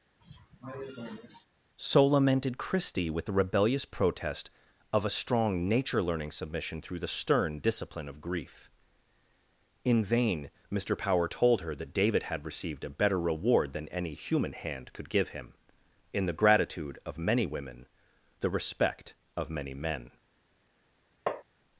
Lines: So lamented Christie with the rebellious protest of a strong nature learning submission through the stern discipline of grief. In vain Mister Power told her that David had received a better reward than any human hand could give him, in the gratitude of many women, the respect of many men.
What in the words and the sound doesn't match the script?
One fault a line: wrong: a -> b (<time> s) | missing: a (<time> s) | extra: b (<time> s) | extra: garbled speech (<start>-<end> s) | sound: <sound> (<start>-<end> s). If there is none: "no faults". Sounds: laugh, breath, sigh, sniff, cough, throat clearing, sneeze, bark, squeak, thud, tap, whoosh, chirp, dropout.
sound: cough (0.2-1.5 s)
sound: tap (21.3-21.4 s)